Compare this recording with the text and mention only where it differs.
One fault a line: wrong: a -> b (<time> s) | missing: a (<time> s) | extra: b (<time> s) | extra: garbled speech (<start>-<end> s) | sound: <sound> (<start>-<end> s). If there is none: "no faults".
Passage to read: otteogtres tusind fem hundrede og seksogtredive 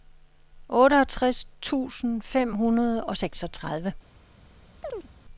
sound: chirp (4.8-5.1 s)